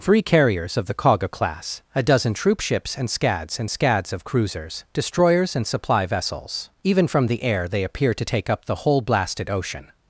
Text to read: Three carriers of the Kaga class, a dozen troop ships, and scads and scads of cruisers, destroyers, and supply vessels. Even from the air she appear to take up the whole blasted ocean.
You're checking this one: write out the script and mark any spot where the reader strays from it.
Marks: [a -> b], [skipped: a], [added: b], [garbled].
Three carriers of the Kaga class, a dozen troop ships, and scads and scads of cruisers, destroyers, and supply vessels. Even from the air [she -> they] appear to take up the whole blasted ocean.